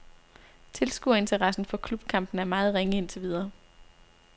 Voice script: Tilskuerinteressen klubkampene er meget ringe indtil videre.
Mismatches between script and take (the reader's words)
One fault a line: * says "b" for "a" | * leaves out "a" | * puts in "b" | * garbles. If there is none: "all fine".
* puts in "for"